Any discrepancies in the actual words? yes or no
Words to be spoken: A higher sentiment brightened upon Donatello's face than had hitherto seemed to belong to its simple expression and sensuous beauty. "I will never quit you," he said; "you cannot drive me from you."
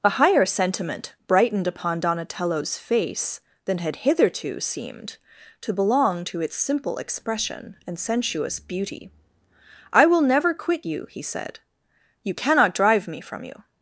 no